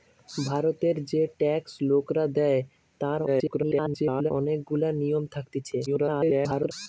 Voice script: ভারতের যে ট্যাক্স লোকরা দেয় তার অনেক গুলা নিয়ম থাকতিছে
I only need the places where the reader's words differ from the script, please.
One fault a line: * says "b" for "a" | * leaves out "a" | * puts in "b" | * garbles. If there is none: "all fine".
* garbles
* garbles